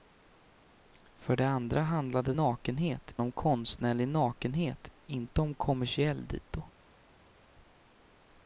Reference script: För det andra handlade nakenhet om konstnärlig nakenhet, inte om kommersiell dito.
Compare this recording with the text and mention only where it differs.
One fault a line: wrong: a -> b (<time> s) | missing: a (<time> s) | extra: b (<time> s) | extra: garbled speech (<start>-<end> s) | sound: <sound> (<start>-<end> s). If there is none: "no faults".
no faults